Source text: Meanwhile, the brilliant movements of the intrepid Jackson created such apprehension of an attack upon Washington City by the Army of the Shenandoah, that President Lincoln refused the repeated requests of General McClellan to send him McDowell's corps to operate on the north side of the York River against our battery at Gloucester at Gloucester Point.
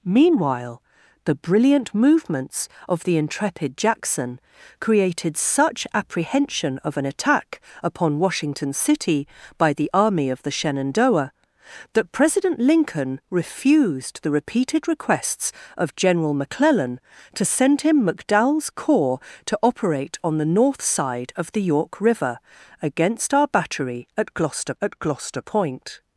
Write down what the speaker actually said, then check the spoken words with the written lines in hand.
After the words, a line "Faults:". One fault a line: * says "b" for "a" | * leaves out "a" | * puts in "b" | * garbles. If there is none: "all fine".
Meanwhile, the brilliant movements of the intrepid Jackson created such apprehension of an attack upon Washington City by the Army of the Shenandoah, that President Lincoln refused the repeated requests of General McClellan to send him McDowell's corps to operate on the north side of the York River against our battery at Gloucester at Gloucester Point.
Faults:
all fine